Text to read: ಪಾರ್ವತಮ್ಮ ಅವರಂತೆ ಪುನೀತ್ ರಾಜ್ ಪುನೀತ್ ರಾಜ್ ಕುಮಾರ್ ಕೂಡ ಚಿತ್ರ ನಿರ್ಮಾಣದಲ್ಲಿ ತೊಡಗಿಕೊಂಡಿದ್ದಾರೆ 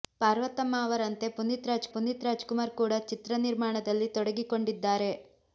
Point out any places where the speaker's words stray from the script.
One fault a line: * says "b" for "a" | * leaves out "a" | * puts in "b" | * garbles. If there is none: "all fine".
all fine